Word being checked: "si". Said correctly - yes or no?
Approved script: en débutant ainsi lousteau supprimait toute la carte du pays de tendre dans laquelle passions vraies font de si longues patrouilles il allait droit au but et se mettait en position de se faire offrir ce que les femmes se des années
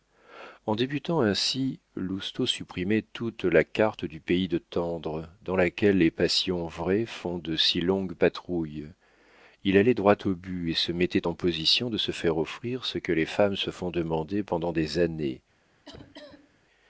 yes